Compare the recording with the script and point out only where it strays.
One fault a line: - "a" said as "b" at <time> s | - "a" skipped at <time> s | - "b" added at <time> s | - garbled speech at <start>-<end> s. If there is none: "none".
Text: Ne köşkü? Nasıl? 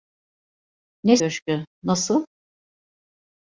none